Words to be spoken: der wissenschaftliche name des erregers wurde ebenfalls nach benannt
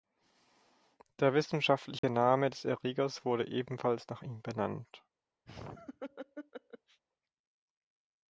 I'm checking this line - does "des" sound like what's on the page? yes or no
yes